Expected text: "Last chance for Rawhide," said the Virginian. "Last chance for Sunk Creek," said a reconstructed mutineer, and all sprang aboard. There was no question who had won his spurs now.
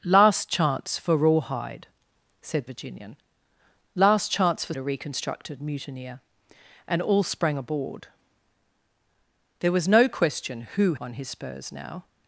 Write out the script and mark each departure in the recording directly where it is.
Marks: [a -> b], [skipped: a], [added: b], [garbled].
"Last chance for Rawhide," said [skipped: the] Virginian. "Last chance for [skipped: Sunk Creek," said] a reconstructed mutineer, and all sprang aboard. There was no question who [skipped: had] won his spurs now.